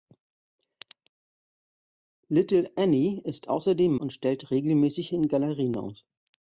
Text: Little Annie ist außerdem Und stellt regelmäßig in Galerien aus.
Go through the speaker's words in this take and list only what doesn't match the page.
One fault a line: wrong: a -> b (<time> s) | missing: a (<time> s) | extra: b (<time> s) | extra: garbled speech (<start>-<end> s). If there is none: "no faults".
no faults